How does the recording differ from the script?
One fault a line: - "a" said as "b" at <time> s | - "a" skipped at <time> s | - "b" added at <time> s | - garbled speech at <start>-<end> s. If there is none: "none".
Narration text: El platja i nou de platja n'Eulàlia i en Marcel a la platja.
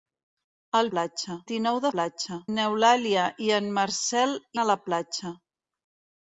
none